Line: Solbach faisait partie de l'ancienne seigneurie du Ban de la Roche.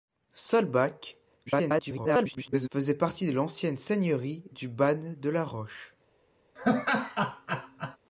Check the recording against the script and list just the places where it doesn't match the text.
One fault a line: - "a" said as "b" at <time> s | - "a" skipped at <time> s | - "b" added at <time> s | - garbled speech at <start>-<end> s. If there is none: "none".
- garbled speech at 1.5-2.7 s